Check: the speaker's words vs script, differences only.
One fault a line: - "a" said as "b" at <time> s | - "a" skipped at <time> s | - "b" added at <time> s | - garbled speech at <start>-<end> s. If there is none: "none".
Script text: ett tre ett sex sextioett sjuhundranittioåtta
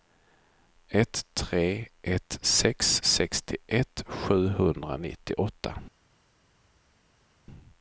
none